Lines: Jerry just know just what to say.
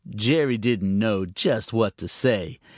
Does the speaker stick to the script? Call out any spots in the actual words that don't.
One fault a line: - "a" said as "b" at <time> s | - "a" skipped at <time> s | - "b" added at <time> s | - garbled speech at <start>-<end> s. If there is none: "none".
- "just" said as "didn't" at 0.6 s